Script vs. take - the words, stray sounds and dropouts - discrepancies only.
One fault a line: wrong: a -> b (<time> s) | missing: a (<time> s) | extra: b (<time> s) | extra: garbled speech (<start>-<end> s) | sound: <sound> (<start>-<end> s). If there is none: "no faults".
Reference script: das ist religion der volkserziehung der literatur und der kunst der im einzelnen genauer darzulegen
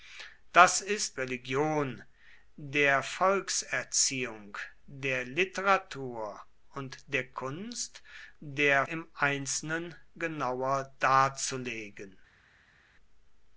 no faults